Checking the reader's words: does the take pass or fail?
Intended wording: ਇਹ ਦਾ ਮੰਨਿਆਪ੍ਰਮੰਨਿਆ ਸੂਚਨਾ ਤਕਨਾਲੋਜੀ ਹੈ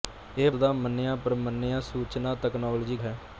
pass